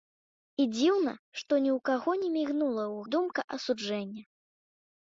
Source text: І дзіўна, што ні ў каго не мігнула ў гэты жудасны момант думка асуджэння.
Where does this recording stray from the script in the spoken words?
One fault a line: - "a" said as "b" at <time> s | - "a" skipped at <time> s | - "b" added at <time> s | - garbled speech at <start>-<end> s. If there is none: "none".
- "гэты жудасны момант" skipped at 3.0 s